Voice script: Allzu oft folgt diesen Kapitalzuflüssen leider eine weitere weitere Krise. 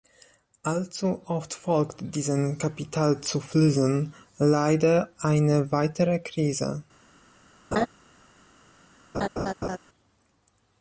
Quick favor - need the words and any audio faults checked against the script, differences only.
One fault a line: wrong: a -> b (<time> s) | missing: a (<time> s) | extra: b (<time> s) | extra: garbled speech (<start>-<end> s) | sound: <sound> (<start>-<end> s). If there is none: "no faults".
missing: weitere (6.2 s)
sound: laugh (7.7-7.9 s)
sound: laugh (9.1-9.8 s)